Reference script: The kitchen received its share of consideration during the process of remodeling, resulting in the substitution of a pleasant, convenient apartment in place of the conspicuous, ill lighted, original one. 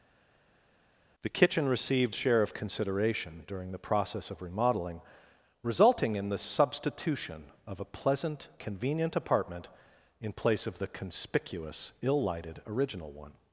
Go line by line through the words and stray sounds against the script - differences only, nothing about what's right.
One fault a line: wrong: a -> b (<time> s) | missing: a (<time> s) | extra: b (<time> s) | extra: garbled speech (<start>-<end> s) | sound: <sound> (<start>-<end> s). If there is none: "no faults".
missing: its (2.1 s)